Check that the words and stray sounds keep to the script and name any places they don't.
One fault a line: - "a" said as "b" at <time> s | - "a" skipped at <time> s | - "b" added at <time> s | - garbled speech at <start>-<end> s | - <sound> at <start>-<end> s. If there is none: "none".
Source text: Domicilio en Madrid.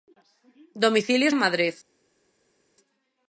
none